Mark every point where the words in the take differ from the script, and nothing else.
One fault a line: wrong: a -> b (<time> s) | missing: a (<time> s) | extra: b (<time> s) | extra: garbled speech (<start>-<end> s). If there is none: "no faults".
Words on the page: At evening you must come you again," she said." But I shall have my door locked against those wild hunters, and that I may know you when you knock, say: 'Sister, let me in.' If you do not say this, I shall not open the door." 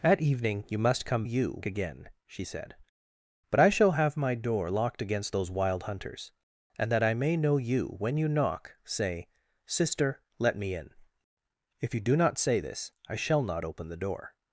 no faults